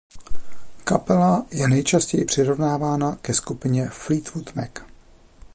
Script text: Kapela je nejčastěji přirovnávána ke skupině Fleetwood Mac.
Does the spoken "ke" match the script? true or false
true